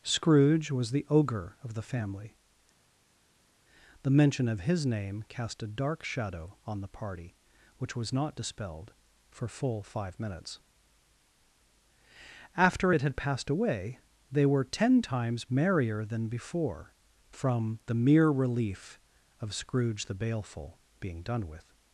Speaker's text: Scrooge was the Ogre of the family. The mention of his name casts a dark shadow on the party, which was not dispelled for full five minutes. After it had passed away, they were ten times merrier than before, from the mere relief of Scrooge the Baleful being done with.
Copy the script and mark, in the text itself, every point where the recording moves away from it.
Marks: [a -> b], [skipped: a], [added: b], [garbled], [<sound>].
Scrooge was the Ogre of the family. The mention of his name [casts -> cast] a dark shadow on the party, which was not dispelled for full five minutes. After it had passed away, they were ten times merrier than before, from the mere relief of Scrooge the Baleful being done with.